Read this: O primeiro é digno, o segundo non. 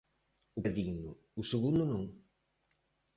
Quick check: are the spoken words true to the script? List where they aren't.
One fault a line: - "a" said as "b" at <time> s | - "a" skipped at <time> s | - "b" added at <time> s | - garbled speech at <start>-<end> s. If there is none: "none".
- "primeiro" skipped at 0.6 s